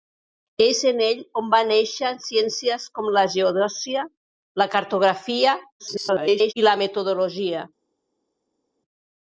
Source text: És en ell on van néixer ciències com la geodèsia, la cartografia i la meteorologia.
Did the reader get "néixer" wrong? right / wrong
right